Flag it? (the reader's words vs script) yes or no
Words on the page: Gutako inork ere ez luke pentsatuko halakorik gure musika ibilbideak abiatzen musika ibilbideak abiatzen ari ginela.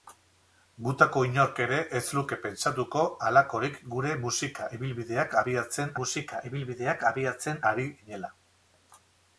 no